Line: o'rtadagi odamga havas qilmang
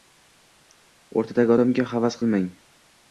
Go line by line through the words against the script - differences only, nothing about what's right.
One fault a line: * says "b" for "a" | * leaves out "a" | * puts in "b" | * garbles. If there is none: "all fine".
all fine